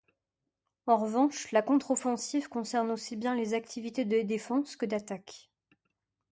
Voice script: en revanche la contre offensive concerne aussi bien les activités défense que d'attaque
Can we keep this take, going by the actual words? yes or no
no